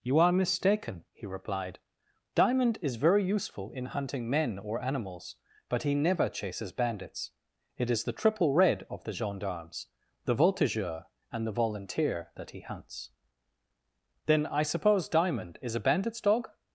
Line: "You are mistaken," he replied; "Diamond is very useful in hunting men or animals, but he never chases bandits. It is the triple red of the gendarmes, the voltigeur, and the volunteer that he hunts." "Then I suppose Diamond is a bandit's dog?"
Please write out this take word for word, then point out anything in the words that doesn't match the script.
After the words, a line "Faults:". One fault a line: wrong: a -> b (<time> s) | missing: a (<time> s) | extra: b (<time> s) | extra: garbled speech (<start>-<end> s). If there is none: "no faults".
"You are mistaken," he replied; "Diamond is very useful in hunting men or animals, but he never chases bandits. It is the triple red of the gendarmes, the voltigeur, and the volunteer that he hunts." "Then I suppose Diamond is a bandit's dog?"
Faults:
no faults